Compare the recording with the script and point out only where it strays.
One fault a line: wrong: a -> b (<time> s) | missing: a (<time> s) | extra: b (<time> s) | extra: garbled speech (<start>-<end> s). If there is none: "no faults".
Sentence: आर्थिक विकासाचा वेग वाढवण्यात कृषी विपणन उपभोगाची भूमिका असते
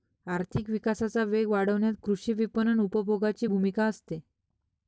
no faults